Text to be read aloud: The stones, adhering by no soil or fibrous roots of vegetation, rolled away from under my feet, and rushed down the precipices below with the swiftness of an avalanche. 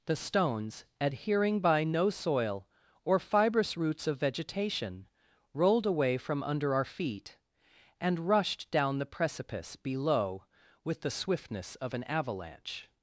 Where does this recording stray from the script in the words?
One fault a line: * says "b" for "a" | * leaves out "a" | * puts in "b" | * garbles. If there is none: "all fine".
* says "our" for "my"
* says "precipice" for "precipices"